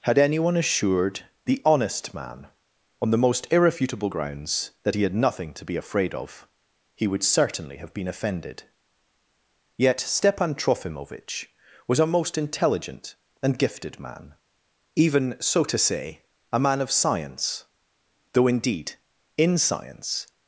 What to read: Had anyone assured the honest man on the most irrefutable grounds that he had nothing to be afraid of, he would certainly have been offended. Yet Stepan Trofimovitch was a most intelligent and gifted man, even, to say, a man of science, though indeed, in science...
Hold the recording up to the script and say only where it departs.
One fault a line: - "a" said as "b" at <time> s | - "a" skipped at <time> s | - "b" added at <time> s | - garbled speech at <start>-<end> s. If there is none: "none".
- "so" added at 15.4 s